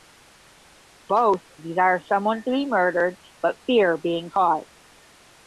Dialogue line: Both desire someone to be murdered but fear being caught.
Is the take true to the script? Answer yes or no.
yes